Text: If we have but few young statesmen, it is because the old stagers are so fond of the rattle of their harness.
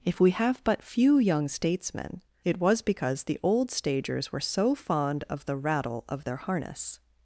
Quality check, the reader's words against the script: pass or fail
fail